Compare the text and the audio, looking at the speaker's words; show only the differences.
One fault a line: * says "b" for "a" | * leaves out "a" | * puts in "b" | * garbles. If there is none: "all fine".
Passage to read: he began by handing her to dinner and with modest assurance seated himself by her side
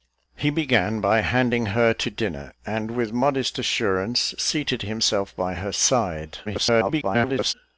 * garbles